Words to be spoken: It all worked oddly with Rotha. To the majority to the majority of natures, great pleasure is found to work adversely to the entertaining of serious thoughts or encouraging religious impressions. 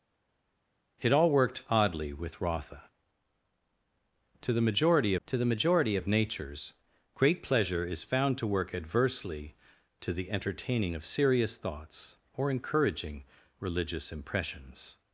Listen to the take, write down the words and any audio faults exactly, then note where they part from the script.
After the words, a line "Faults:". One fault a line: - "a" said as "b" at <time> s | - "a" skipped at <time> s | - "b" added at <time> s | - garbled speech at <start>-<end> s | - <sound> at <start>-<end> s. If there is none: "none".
It all worked oddly with Rotha. To the majority to the majority of natures, great pleasure is found to work adversely to the entertaining of serious thoughts or encouraging religious impressions.
Faults:
none